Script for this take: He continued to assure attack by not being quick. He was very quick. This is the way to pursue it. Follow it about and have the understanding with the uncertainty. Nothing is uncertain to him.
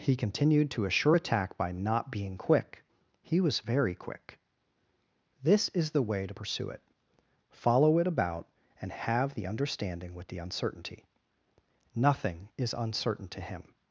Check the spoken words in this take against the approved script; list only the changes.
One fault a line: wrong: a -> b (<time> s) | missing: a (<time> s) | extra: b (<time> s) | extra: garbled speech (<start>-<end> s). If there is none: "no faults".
no faults